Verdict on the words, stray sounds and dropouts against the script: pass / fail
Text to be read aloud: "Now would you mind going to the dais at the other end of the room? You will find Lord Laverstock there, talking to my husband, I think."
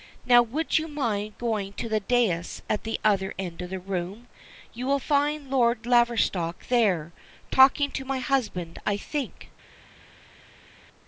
pass